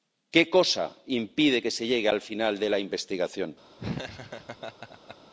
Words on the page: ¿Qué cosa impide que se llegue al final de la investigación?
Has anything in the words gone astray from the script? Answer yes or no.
no